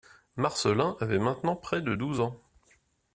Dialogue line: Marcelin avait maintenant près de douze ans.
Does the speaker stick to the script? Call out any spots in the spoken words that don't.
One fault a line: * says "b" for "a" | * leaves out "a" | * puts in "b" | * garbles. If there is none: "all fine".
all fine